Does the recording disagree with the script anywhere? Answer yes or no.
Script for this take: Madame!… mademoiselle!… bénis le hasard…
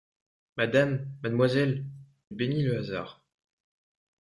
no